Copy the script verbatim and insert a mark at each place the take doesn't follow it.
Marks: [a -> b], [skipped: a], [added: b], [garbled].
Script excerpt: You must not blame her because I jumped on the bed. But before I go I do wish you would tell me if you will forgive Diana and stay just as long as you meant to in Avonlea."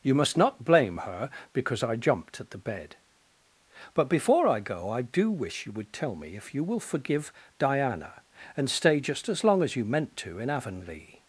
You must not blame her because I jumped [on -> at] the bed. But before I go I do wish you would tell me if you will forgive Diana and stay just as long as you meant to in Avonlea."